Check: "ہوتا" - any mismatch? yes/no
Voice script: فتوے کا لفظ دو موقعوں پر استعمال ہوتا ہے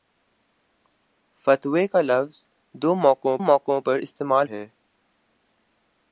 yes